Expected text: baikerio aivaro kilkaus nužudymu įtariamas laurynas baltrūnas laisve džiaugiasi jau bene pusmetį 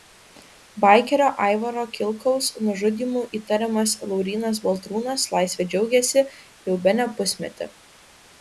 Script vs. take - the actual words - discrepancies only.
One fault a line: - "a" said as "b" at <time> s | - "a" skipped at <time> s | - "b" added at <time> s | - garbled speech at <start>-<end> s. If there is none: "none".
none